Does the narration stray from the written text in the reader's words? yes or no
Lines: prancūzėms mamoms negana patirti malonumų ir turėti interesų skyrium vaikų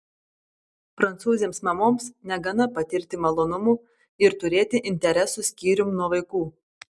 yes